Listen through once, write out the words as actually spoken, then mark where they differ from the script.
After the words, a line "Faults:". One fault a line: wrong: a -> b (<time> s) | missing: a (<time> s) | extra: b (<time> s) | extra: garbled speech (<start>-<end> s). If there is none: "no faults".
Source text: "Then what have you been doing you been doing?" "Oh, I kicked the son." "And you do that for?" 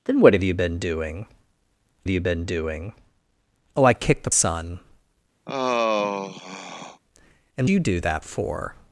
"Then what have you been doing you been doing?" "Oh, I kicked the son." "And you do that for?"
Faults:
no faults